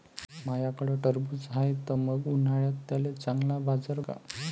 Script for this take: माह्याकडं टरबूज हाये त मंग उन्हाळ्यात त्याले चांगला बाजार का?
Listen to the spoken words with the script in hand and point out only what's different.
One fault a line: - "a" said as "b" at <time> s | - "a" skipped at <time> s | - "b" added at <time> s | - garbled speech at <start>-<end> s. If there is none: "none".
none